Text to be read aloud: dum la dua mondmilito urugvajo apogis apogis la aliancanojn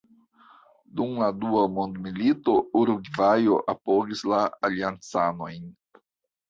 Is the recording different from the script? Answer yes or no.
yes